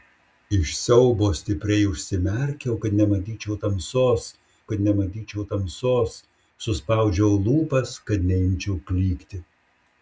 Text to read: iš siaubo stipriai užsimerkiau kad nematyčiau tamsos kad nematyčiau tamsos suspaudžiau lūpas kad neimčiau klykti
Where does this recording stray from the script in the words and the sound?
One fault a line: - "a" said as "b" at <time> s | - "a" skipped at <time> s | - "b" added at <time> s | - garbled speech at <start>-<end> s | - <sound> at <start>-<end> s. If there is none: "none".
none